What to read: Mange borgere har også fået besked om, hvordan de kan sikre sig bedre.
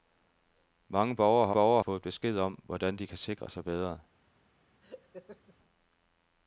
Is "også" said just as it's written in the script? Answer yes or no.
no